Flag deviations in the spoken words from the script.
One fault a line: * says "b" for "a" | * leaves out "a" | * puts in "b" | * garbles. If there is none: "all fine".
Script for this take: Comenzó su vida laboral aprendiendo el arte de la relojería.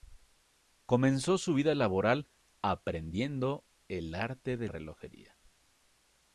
* leaves out "la"